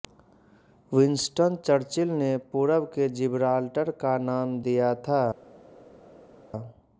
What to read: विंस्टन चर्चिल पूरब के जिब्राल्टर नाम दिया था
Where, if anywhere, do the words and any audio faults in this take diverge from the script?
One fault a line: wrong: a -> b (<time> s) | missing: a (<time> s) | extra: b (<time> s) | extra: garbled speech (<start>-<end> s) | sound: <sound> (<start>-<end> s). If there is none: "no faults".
extra: ने (2.1 s)
extra: का (4.0 s)